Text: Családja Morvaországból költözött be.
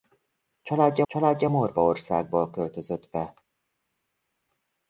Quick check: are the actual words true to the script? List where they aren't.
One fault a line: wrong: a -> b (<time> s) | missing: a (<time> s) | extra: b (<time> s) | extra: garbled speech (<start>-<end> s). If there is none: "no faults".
extra: családja (1.1 s)